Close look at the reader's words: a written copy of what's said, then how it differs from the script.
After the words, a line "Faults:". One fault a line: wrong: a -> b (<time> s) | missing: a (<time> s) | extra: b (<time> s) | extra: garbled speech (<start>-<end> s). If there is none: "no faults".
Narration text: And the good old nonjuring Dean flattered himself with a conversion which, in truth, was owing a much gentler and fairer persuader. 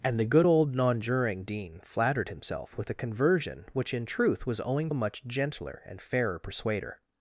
And the good old nonjuring Dean flattered himself with a conversion which, in truth, was owing a much gentler and fairer persuader.
Faults:
no faults